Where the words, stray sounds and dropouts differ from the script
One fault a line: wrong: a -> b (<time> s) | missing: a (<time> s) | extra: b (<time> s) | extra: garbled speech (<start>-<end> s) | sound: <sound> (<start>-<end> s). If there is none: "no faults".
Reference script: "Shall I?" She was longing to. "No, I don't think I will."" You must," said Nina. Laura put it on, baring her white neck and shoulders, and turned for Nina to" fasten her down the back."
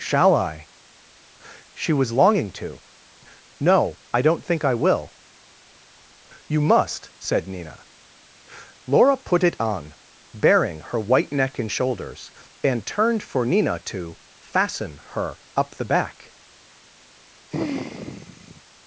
wrong: down -> up (15.6 s)
sound: sigh (17.5-18.6 s)